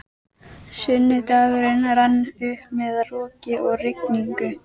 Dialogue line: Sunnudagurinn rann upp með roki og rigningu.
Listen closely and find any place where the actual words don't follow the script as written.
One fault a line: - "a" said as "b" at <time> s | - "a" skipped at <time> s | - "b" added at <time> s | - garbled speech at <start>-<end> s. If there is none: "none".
none